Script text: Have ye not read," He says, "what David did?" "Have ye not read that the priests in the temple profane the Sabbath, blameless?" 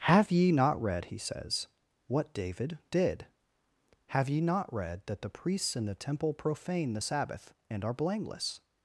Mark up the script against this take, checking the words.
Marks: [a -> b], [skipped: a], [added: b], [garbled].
Have ye not read," He says, "what David did?" "Have ye not read that the priests in the temple profane the Sabbath, [added: and are] blameless?"